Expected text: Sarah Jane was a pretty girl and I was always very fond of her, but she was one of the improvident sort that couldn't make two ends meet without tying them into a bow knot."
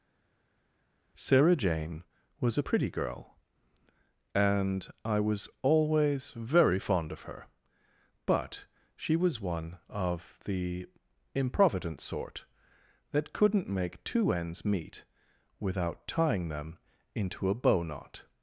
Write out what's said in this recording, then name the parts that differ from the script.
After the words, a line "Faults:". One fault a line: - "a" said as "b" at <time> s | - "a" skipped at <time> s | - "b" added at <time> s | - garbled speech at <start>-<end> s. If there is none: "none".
Sarah Jane was a pretty girl and I was always very fond of her, but she was one of the improvident sort that couldn't make two ends meet without tying them into a bow knot."
Faults:
none